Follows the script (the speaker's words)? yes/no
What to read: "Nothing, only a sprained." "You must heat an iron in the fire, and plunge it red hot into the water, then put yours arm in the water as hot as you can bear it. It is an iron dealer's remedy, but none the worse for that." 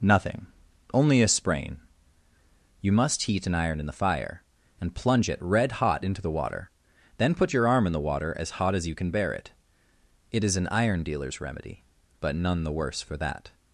no